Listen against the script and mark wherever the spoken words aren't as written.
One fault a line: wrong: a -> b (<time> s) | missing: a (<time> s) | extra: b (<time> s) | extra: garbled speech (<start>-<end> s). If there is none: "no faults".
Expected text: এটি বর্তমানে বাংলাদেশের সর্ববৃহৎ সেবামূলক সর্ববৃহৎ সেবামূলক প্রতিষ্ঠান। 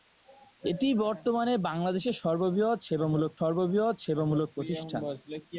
no faults